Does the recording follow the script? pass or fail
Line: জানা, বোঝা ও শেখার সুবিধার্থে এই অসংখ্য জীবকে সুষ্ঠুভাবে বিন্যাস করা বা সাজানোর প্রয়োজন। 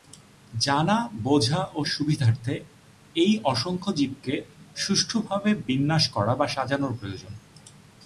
fail